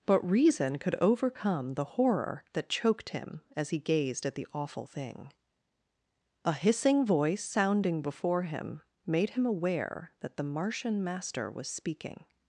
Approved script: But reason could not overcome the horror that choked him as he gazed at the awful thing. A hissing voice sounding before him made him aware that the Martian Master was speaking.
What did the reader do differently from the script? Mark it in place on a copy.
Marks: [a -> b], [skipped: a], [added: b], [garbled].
But reason could [skipped: not] overcome the horror that choked him as he gazed at the awful thing. A hissing voice sounding before him made him aware that the Martian Master was speaking.